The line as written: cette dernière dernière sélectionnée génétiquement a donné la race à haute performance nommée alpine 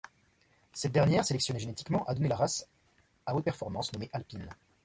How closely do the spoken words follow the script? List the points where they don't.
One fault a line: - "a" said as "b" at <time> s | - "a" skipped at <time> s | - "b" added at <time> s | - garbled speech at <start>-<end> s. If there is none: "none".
- "dernière" skipped at 1.2 s